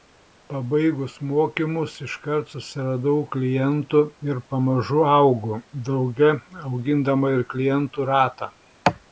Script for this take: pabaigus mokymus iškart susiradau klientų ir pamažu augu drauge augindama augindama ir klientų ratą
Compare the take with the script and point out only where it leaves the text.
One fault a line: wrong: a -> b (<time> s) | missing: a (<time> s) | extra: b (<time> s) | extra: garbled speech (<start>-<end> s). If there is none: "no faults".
missing: augindama (7.4 s)